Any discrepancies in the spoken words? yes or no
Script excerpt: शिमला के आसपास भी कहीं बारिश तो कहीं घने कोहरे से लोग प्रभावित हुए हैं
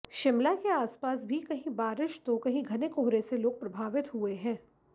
no